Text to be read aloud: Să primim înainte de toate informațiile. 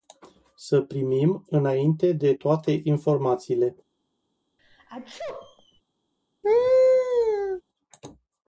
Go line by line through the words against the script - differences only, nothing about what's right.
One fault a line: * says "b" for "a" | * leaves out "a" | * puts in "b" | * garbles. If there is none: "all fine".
all fine